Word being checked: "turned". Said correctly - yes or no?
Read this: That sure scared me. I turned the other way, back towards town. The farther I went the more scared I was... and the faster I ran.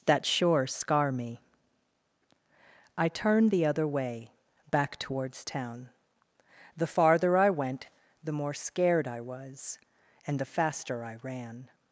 yes